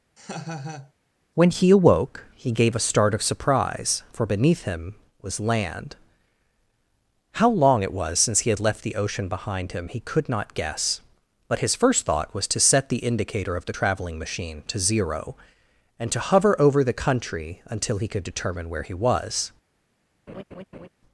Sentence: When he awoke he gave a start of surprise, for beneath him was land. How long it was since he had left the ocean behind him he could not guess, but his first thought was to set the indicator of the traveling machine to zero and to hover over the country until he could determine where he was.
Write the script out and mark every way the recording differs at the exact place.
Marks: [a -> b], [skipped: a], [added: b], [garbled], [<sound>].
[laugh] When he awoke he gave a start of surprise, for beneath him was land. How long it was since he had left the ocean behind him he could not guess, but his first thought was to set the indicator of the traveling machine to zero and to hover over the country until he could determine where he was. [laugh]